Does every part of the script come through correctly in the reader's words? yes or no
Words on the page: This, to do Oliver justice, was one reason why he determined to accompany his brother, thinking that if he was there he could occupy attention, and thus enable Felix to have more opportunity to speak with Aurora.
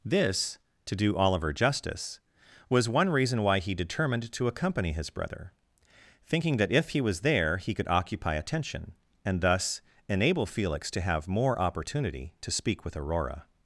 yes